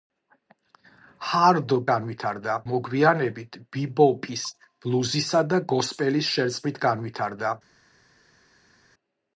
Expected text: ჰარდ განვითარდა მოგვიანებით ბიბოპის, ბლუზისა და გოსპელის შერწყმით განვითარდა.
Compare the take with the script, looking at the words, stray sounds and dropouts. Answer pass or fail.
pass